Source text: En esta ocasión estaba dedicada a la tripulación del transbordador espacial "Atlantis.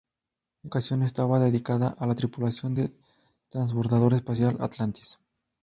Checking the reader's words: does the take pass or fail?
fail